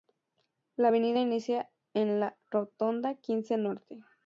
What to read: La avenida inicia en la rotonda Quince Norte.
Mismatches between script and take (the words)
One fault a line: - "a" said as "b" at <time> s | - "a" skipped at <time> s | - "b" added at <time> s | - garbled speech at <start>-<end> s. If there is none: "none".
none